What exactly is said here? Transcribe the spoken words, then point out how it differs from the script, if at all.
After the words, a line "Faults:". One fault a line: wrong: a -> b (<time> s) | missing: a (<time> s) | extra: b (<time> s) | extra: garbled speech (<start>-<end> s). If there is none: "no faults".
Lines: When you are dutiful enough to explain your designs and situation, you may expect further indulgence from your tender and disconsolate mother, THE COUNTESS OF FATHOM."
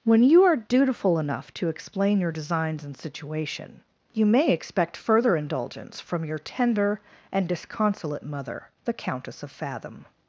When you are dutiful enough to explain your designs and situation, you may expect further indulgence from your tender and disconsolate mother, THE COUNTESS OF FATHOM."
Faults:
no faults